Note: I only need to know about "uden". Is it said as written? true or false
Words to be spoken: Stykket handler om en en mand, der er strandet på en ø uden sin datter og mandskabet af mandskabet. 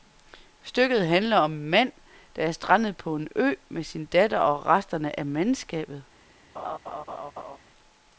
false